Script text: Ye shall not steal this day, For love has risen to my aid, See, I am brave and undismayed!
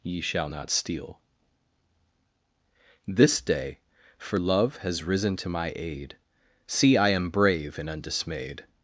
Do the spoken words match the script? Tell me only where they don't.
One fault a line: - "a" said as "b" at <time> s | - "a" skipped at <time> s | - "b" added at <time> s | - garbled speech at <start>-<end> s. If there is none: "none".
none